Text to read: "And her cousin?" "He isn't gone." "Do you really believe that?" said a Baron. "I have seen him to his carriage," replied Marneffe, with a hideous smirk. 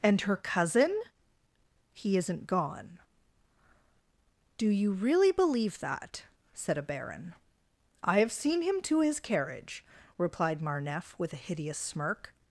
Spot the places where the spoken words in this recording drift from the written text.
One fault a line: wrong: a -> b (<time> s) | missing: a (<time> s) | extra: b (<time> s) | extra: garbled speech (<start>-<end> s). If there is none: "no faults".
no faults